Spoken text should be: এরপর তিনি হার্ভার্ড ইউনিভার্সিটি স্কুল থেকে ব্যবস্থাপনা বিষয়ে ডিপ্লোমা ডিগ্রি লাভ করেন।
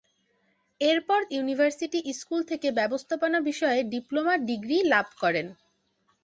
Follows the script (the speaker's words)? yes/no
no